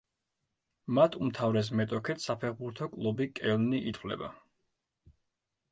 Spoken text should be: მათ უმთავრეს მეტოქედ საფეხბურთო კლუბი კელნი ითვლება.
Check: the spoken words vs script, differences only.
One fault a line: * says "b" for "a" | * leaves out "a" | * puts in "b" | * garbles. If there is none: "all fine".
all fine